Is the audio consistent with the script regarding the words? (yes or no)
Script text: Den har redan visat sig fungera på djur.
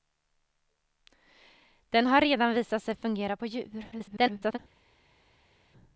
no